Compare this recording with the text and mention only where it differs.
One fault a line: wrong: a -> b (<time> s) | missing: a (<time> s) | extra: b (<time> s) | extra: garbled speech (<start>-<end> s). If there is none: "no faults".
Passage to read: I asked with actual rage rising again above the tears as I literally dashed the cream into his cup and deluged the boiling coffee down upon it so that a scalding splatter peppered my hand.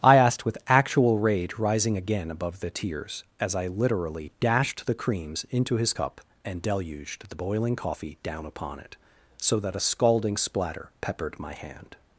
wrong: cream -> creams (4.9 s)